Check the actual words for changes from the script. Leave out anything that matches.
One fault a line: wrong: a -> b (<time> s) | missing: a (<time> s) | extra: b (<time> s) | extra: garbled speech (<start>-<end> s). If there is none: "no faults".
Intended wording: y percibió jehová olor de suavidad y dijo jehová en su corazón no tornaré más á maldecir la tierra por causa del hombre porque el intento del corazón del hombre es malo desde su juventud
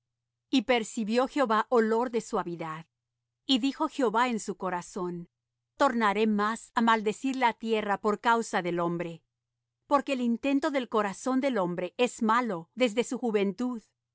missing: no (5.3 s)